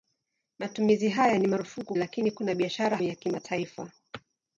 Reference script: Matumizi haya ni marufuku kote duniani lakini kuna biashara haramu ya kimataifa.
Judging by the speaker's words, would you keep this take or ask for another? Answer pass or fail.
fail